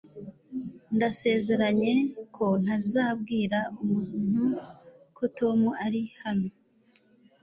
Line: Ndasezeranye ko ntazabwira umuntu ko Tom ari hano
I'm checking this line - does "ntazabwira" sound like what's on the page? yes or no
yes